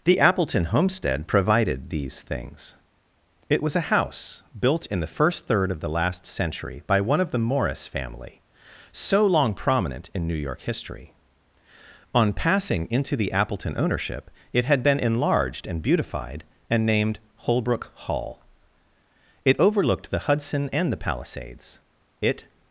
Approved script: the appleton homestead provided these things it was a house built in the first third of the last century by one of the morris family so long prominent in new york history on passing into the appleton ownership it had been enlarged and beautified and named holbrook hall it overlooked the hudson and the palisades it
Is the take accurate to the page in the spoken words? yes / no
yes